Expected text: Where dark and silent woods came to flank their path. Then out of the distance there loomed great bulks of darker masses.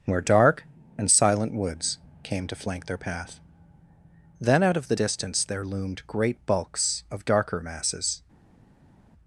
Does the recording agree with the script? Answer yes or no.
yes